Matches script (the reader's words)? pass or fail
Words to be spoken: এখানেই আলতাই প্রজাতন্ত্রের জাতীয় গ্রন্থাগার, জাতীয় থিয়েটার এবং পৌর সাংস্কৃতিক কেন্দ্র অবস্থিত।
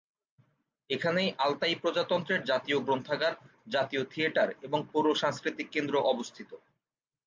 pass